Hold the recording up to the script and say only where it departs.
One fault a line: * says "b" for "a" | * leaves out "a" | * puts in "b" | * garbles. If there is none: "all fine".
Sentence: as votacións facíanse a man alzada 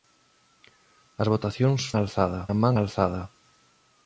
* says "alzada" for "facíanse"